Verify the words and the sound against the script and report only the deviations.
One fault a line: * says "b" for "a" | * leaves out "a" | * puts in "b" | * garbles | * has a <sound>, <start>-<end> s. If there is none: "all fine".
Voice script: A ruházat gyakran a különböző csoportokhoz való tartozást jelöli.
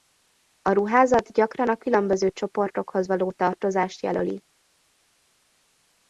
all fine